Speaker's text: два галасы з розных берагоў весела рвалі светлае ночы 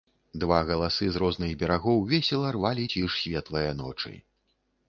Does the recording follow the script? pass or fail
fail